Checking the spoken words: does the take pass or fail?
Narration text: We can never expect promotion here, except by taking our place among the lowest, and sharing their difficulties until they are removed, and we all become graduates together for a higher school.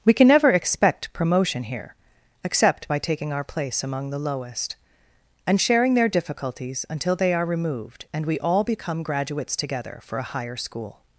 pass